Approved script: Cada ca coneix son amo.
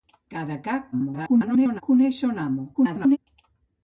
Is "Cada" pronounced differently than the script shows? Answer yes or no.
no